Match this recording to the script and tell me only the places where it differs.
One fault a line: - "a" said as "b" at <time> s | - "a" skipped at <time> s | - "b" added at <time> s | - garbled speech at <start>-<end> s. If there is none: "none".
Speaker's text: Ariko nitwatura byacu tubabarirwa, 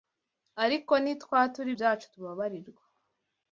none